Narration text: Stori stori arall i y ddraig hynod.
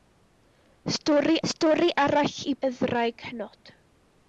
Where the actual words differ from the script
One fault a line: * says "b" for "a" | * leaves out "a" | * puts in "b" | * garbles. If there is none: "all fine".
all fine